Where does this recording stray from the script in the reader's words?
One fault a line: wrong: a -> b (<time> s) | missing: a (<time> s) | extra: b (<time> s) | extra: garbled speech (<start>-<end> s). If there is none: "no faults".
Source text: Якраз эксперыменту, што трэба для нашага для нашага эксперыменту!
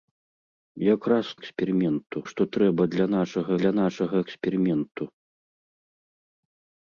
no faults